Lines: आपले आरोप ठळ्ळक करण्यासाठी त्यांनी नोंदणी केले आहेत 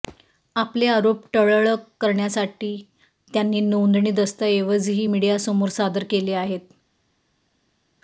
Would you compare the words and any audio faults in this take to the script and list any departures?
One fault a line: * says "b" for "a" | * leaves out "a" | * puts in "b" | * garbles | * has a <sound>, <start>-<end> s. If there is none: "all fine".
* puts in "दस्तऐवजही मीडियासमोर सादर"